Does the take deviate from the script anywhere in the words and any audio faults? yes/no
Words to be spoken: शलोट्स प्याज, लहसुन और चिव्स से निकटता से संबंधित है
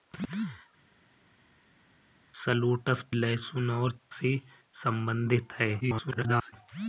yes